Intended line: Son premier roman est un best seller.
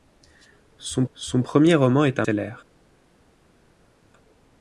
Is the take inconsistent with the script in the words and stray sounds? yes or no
yes